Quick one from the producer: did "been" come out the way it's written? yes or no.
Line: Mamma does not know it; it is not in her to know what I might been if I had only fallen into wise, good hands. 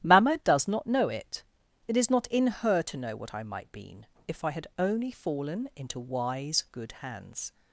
yes